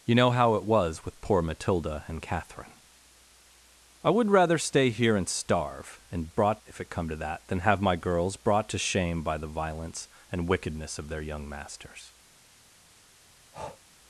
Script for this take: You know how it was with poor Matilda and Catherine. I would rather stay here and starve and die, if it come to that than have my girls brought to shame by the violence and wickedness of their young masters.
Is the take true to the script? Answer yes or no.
no